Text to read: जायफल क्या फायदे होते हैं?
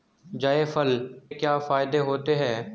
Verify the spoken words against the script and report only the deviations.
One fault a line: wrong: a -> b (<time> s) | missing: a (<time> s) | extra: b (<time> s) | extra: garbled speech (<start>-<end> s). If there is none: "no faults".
no faults